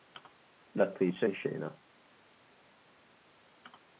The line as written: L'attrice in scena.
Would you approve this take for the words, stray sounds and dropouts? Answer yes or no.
yes